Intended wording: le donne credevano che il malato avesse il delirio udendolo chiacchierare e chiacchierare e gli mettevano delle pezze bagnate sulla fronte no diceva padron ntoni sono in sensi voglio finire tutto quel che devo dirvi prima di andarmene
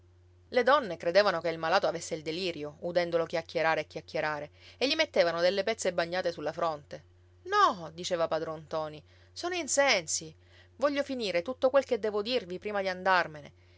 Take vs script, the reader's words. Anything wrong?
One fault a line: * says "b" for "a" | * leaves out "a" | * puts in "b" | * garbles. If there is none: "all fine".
all fine